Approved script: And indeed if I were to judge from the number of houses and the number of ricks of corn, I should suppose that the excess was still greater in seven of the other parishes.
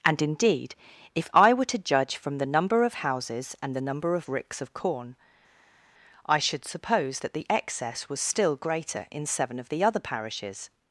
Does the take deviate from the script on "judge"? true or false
false